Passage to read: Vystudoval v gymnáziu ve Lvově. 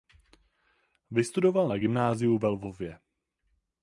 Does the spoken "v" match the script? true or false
false